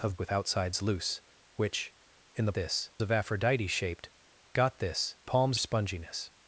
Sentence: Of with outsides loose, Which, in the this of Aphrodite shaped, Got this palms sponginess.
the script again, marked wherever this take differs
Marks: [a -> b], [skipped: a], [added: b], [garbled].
Of with outsides loose, Which, in the this of Aphrodite shaped, Got this palms sponginess.